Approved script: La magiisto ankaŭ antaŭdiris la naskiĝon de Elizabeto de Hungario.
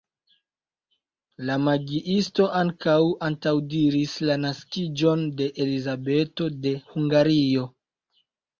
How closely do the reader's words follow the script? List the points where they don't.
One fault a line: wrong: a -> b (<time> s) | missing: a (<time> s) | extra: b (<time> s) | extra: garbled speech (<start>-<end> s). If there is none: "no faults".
no faults